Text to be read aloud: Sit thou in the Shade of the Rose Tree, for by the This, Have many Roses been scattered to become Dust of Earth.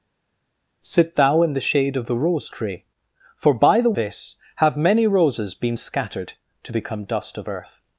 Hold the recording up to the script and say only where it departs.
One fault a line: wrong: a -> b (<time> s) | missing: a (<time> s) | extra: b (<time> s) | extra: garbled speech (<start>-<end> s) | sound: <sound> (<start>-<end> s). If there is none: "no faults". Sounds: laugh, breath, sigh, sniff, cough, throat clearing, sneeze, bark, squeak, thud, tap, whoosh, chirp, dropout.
no faults